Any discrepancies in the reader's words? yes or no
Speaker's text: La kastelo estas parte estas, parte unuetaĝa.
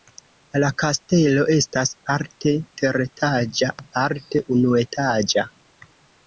yes